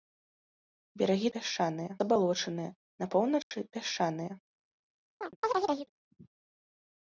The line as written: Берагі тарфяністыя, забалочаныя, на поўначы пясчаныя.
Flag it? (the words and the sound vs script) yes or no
yes